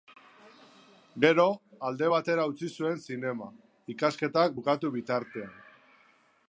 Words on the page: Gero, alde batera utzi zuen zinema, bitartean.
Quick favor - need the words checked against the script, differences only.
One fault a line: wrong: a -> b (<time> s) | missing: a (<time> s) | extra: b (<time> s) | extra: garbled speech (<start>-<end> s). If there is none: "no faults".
extra: ikasketak bukatu (4.0 s)